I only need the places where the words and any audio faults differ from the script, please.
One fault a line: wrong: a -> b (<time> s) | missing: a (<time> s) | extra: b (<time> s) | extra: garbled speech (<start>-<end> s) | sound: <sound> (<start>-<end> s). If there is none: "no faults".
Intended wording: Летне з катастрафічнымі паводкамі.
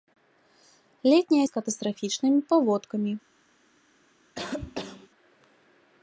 sound: cough (4.3-5.1 s)